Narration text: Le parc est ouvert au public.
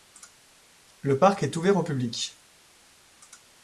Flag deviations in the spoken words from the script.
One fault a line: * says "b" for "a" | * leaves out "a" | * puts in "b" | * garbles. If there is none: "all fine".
all fine